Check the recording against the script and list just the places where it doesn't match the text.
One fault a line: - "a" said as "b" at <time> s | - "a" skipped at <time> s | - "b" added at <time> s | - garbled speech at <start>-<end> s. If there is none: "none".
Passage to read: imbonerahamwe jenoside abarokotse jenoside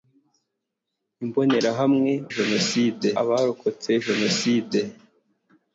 none